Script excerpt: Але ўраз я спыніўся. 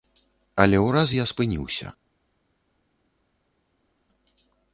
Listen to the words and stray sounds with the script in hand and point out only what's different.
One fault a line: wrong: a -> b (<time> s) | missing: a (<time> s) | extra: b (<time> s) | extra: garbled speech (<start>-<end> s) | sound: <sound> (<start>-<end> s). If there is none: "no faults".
no faults